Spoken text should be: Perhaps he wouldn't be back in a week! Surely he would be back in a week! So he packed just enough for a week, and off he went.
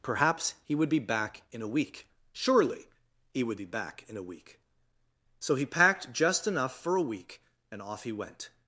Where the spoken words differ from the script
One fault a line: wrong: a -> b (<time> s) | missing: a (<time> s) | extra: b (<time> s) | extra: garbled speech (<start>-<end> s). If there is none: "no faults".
wrong: wouldn't -> would (0.8 s)